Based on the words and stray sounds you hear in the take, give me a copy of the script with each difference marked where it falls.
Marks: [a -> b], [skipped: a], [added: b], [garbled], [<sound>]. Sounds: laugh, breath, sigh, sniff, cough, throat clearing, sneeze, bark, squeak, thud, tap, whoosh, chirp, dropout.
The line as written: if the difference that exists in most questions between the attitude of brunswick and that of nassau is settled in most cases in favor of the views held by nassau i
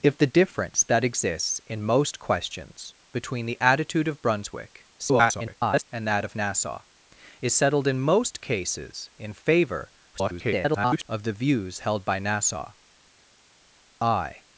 if the difference that exists in most questions between the attitude of brunswick [garbled] and that of nassau is settled in most cases in favor [garbled] of the views held by nassau i